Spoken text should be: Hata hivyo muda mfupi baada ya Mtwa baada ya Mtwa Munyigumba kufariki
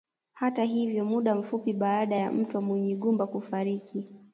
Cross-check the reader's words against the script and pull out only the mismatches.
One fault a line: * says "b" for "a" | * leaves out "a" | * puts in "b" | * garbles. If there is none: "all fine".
* leaves out "baada ya Mtwa"